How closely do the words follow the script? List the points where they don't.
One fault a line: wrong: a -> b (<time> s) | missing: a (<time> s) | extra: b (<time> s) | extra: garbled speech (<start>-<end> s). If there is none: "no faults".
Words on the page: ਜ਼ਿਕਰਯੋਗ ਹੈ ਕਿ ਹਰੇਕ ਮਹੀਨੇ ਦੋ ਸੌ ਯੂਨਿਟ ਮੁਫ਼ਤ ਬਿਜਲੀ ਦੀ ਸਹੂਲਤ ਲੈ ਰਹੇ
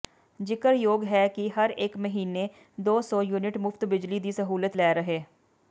no faults